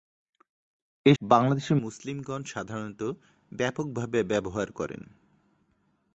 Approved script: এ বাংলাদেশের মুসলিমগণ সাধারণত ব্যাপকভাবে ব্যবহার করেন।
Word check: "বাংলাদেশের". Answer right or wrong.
right